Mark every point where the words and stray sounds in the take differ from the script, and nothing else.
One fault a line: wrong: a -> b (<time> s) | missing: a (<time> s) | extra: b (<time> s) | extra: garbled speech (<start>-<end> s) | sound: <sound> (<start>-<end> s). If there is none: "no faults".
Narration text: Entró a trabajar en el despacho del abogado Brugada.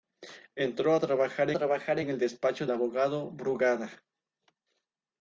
extra: trabajar (1.5 s)
missing: del (2.7 s)